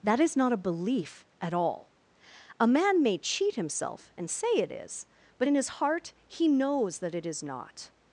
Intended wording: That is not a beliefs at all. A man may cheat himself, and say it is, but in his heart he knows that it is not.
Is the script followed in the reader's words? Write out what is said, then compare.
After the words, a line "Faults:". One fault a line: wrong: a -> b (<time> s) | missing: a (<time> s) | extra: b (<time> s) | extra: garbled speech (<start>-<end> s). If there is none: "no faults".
That is not a belief at all. A man may cheat himself, and say it is, but in his heart he knows that it is not.
Faults:
wrong: beliefs -> belief (0.6 s)